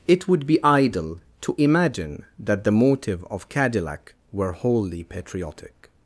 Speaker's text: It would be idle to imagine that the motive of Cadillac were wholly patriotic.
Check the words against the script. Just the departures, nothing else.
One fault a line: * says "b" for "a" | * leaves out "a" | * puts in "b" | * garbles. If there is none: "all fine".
all fine